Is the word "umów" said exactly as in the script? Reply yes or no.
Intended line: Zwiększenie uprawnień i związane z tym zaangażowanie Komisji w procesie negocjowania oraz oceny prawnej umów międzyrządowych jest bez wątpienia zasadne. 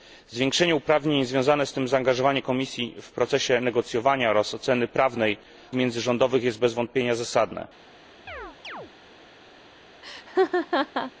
no